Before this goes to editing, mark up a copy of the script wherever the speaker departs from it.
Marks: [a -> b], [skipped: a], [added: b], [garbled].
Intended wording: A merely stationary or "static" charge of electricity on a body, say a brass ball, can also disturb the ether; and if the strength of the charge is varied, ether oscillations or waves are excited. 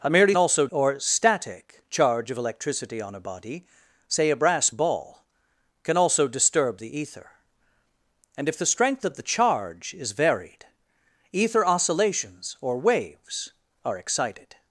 A merely [stationary -> also] or "static" charge of electricity on a body, say a brass ball, can also disturb the ether; and if the strength of the charge is varied, ether oscillations or waves are excited.